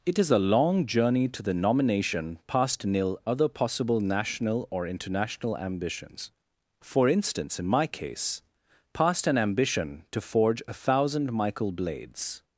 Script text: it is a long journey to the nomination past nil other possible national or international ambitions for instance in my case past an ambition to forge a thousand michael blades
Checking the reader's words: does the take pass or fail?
pass